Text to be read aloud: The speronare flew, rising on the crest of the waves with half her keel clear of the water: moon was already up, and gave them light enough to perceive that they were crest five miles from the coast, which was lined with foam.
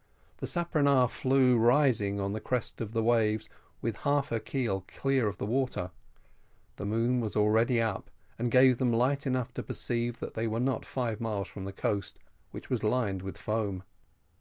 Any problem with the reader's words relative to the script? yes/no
yes